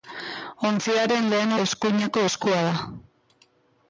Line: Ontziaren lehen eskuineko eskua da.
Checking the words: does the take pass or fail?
pass